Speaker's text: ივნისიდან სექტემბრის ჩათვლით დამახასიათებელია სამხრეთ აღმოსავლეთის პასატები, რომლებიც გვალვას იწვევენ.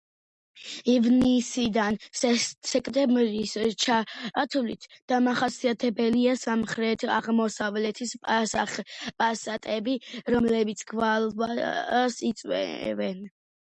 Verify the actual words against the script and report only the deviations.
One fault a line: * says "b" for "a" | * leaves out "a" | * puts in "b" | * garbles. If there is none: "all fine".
all fine